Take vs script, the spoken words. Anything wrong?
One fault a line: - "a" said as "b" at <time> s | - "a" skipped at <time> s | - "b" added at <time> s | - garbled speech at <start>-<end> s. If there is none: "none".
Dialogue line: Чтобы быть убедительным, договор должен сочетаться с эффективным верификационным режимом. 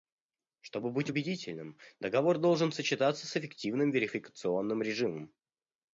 none